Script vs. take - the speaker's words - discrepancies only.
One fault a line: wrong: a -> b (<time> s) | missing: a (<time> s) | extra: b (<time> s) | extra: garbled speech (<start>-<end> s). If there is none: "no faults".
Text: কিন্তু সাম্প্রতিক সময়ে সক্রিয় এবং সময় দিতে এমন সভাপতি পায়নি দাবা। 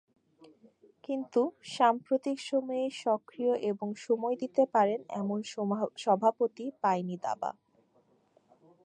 extra: পারেন (4.7 s)